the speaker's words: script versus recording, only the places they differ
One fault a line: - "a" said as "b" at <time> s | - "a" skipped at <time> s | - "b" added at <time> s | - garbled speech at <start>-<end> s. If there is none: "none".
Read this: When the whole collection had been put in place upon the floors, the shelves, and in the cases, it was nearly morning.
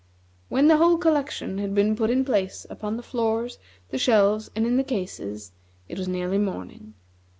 none